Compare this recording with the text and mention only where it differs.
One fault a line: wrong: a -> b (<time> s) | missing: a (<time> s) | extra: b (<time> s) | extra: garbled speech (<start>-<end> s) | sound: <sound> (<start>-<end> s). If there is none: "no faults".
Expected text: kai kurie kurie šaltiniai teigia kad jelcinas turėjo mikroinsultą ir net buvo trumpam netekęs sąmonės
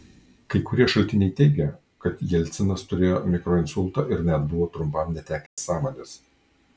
missing: kurie (0.8 s)
sound: dropout (5.5-5.6 s)